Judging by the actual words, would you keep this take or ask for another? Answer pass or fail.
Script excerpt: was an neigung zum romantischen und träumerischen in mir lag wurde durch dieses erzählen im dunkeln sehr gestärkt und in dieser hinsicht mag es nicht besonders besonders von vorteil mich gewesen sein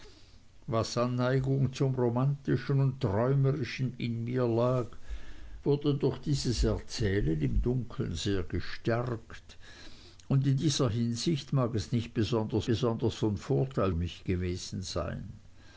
pass